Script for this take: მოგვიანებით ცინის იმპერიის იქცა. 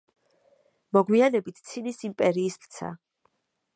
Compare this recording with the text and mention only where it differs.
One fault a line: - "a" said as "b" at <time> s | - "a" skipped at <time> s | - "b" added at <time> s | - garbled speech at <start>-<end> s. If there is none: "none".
none